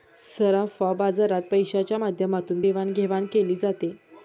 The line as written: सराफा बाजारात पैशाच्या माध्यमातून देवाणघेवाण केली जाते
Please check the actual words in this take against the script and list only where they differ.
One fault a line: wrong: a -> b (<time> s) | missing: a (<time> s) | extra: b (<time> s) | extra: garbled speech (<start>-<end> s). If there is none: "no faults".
no faults